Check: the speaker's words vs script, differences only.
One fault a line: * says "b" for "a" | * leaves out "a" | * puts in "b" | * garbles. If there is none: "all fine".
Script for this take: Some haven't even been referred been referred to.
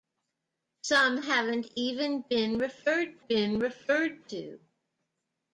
all fine